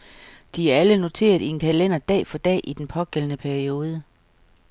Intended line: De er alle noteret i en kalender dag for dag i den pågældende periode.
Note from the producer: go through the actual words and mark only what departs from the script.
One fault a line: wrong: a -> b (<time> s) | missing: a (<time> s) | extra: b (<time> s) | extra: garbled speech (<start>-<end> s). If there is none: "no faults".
no faults